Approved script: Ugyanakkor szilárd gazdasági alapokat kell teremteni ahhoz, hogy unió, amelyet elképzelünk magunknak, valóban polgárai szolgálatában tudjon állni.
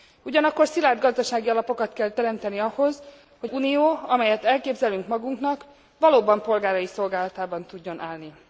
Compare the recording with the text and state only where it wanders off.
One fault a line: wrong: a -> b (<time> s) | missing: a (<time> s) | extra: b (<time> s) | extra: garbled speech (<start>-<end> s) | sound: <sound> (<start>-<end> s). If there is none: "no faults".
no faults